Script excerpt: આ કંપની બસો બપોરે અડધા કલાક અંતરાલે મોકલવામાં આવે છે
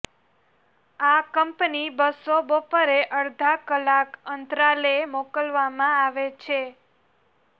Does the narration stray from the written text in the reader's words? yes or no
no